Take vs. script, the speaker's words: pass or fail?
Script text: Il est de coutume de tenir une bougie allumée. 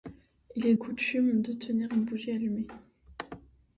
fail